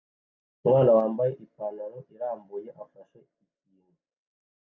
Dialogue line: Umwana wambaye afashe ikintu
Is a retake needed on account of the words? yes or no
yes